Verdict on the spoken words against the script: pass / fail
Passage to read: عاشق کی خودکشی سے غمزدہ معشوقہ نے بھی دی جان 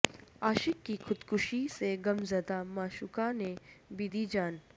pass